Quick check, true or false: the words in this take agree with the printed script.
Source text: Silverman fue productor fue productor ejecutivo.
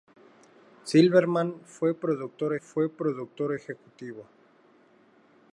true